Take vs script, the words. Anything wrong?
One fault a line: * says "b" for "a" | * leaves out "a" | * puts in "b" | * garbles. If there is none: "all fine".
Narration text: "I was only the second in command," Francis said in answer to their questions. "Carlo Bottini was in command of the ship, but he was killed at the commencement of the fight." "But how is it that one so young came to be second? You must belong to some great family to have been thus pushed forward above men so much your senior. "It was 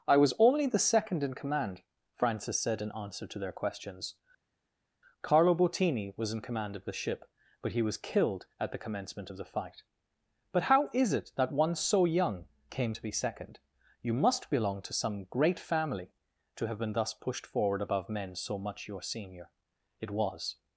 all fine